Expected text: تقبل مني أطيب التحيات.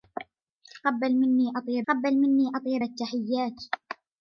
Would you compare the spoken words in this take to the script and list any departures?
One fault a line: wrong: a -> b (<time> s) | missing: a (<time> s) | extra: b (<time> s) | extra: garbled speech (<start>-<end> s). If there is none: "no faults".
extra: تقبل مني أطيب (1.9 s)